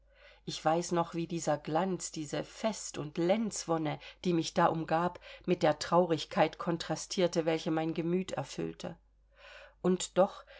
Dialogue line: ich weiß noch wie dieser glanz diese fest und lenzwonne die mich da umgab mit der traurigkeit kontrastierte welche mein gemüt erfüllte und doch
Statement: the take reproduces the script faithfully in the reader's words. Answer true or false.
true